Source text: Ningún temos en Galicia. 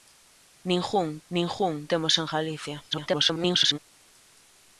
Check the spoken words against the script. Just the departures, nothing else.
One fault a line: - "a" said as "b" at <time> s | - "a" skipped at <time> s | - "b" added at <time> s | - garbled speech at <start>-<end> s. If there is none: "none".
- "ningún" added at 1.3 s
- garbled speech at 2.9-3.8 s